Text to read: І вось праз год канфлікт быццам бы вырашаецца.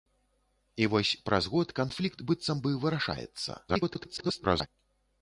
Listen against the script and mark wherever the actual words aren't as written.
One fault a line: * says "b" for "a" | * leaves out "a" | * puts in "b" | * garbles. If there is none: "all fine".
* garbles